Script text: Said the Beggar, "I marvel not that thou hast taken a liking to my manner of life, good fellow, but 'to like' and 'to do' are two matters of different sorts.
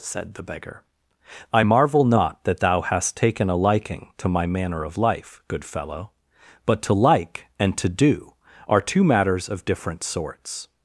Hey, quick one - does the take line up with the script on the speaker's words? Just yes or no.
yes